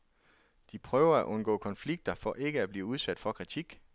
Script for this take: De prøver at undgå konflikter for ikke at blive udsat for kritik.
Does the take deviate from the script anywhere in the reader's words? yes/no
no